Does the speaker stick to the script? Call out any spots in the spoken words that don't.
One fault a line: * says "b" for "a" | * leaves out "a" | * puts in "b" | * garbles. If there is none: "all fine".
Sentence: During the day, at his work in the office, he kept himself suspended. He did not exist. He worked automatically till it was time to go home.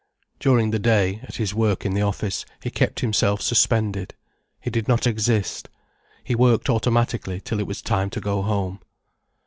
all fine